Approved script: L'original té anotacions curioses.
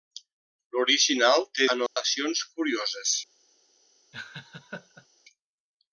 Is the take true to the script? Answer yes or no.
yes